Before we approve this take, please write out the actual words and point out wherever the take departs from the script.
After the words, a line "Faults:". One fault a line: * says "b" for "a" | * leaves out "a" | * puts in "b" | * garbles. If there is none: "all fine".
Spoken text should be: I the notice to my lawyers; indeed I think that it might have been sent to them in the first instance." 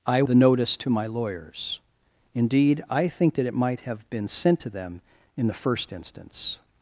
I the notice to my lawyers; indeed I think that it might have been sent to them in the first instance."
Faults:
all fine